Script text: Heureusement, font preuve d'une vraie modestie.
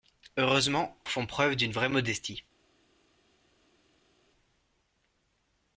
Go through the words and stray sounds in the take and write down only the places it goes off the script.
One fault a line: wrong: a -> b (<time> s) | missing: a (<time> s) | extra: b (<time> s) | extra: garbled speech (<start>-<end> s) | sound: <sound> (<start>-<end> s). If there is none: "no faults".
no faults